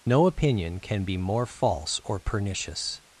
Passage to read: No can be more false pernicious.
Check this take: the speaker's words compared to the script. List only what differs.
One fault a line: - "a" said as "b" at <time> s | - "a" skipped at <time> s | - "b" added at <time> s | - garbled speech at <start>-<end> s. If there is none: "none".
- "opinion" added at 0.2 s
- "or" added at 2.0 s